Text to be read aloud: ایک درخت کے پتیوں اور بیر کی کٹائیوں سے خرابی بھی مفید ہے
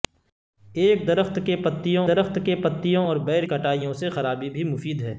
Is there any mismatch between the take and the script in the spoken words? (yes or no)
yes